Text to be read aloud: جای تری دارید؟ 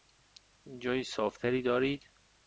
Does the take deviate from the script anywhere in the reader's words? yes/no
yes